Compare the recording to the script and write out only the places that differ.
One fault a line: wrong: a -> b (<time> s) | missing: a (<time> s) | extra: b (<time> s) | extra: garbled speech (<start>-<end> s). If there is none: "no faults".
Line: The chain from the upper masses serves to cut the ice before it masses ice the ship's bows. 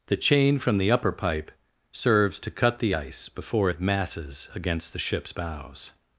wrong: masses -> pipe (1.1 s)
wrong: ice -> against (4.5 s)